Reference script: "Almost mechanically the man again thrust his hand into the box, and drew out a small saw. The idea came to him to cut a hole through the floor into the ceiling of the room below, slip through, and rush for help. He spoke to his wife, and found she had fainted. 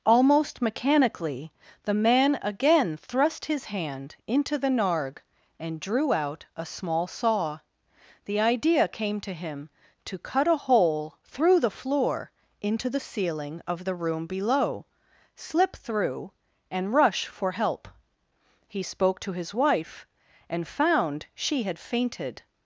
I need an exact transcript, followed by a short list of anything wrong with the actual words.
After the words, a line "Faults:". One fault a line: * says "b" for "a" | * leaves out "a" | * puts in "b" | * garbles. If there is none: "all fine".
"Almost mechanically the man again thrust his hand into the narg, and drew out a small saw. The idea came to him to cut a hole through the floor into the ceiling of the room below, slip through, and rush for help. He spoke to his wife, and found she had fainted.
Faults:
* says "narg" for "box"